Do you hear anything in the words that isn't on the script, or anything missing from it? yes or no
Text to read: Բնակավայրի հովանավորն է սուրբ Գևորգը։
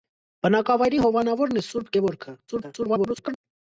yes